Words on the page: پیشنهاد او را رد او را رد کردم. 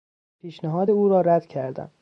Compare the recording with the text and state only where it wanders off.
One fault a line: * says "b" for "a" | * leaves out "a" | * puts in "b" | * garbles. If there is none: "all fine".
* leaves out "او را رد"